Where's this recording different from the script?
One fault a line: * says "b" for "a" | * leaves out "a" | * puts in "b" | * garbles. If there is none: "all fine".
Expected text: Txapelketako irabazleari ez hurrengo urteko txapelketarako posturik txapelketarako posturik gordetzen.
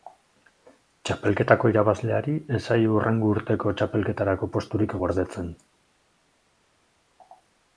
* puts in "zaio"
* leaves out "txapelketarako posturik"